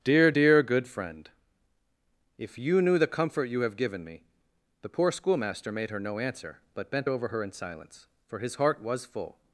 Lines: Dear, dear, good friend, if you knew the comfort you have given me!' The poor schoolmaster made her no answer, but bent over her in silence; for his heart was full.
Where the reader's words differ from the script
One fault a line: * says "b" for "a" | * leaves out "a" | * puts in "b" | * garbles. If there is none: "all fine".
all fine